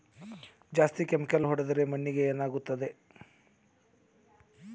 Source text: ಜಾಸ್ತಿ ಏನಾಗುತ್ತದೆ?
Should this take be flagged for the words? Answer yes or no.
yes